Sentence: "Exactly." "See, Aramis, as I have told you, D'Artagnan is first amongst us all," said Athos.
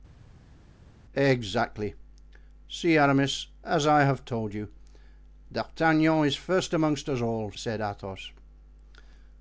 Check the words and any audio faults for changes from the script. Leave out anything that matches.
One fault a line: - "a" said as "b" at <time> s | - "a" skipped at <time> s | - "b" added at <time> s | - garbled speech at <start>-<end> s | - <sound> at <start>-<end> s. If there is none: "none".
none